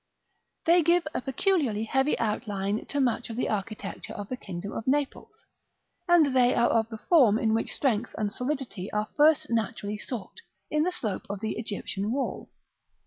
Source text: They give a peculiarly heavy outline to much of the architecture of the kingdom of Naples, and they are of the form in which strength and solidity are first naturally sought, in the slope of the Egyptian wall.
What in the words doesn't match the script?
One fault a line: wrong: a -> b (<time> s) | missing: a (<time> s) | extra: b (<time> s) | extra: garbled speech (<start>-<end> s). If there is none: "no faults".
no faults